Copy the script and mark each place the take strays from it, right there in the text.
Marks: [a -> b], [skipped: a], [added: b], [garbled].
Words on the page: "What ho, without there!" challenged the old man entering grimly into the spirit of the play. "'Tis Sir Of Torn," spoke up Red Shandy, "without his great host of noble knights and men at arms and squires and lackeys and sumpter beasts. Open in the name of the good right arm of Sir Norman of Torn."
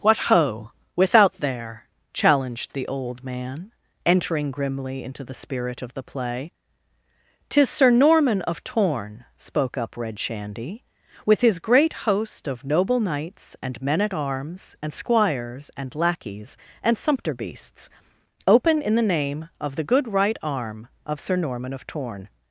"What ho, without there!" challenged the old man entering grimly into the spirit of the play. "'Tis Sir [added: Norman] Of Torn," spoke up Red Shandy, ["without -> with] his great host of noble knights and men at arms and squires and lackeys and sumpter beasts. Open in the name of the good right arm of Sir Norman of Torn."